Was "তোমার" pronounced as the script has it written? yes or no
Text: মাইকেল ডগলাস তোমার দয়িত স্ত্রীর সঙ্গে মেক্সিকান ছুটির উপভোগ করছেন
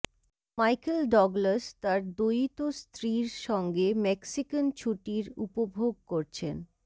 no